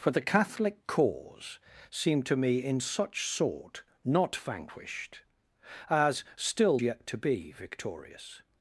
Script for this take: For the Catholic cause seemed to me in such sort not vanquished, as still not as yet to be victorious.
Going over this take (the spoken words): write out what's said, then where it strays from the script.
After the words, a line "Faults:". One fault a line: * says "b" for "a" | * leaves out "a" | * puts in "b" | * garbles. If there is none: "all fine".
For the Catholic cause seemed to me in such sort not vanquished, as still yet to be victorious.
Faults:
* leaves out "not as"